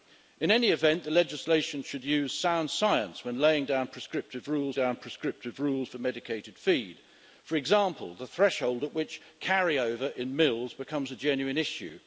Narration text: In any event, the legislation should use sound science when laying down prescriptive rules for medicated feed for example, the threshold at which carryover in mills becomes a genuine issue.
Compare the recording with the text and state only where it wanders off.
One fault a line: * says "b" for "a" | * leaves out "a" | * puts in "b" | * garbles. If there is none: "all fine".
* puts in "down prescriptive rules"